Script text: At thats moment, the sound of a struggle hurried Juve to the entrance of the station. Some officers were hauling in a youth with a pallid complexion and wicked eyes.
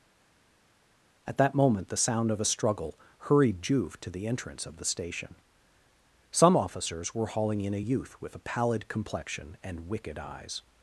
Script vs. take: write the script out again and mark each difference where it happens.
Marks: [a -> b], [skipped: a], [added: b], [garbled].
At [thats -> that] moment, the sound of a struggle hurried Juve to the entrance of the station. Some officers were hauling in a youth with a pallid complexion and wicked eyes.